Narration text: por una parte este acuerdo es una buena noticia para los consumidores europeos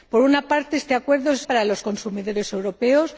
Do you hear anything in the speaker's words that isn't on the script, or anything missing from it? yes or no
yes